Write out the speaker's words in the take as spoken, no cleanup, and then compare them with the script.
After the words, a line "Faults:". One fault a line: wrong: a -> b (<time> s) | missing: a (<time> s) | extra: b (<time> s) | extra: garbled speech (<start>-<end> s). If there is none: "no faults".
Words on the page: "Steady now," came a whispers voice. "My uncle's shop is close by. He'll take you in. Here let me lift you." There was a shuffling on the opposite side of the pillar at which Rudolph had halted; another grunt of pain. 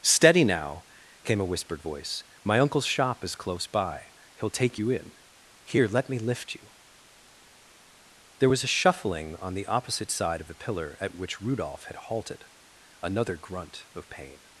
"Steady now," came a whispered voice. "My uncle's shop is close by. He'll take you in. Here let me lift you." There was a shuffling on the opposite side of the pillar at which Rudolph had halted; another grunt of pain.
Faults:
wrong: whispers -> whispered (1.4 s)